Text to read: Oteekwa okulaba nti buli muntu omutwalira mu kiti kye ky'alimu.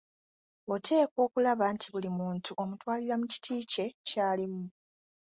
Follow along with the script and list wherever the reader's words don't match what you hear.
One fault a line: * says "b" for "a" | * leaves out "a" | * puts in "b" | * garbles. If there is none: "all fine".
all fine